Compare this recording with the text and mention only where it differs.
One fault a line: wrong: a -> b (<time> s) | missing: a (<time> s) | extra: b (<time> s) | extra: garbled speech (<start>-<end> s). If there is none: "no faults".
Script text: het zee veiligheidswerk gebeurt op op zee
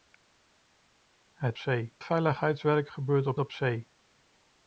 no faults